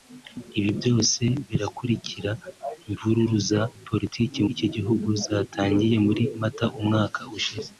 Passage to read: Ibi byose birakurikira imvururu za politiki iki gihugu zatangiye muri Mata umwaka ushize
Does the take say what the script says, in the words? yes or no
yes